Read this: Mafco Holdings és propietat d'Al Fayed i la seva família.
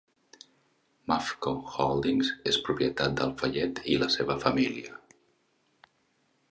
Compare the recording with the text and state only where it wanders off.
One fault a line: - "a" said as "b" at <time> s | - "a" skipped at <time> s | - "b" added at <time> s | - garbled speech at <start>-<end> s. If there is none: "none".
none